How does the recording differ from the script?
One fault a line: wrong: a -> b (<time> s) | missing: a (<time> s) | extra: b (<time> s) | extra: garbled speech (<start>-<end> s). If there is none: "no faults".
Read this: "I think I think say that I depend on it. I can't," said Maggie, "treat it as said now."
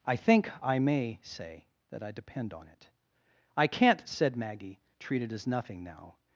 wrong: think -> may (0.8 s)
wrong: said -> nothing (5.5 s)